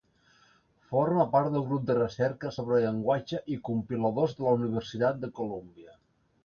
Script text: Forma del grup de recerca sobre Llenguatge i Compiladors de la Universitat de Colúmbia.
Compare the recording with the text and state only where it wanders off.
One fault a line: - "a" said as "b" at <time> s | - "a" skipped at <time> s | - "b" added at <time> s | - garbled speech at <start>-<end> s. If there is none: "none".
- "part" added at 1.4 s